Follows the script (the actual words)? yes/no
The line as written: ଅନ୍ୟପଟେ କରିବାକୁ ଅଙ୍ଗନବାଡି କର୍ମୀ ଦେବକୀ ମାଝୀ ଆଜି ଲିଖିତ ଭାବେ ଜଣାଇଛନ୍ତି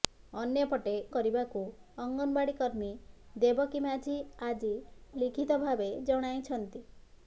yes